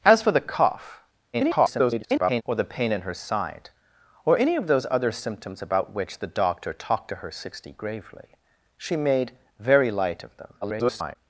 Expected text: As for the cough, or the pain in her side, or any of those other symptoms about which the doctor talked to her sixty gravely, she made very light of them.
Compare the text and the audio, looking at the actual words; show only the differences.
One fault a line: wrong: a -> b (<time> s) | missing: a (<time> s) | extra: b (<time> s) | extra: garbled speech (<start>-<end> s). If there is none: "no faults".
extra: garbled speech (1.3-2.4 s)
extra: garbled speech (10.6-11.2 s)